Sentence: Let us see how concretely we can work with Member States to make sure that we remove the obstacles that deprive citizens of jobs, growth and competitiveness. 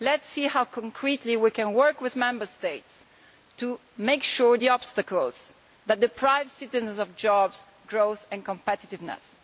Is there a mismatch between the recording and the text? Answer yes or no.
yes